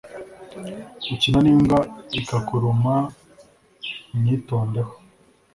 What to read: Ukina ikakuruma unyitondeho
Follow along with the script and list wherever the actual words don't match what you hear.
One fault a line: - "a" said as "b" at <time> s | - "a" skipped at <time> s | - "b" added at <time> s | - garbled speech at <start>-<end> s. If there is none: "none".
- "nimbwa" added at 1.4 s